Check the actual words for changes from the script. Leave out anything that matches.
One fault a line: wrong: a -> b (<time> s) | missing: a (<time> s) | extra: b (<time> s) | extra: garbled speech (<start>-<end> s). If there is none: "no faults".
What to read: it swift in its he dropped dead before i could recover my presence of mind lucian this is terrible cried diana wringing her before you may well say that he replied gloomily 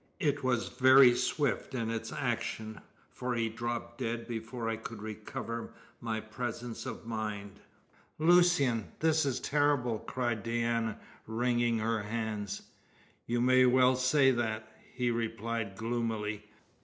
extra: was very (0.4 s)
extra: action for (2.1 s)
wrong: before -> hands (12.0 s)